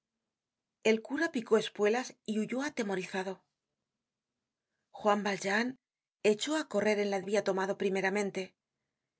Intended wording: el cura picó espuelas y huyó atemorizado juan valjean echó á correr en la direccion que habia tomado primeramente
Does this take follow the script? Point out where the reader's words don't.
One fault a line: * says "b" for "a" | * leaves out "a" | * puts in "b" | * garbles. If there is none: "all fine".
* leaves out "direccion que"